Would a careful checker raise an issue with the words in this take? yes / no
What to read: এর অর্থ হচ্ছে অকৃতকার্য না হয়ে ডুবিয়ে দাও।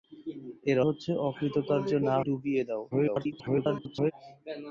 yes